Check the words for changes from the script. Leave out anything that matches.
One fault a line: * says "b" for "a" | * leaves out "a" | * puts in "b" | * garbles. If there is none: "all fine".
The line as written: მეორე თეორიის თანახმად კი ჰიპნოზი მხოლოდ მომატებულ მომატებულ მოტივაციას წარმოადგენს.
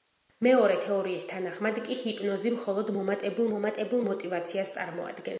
all fine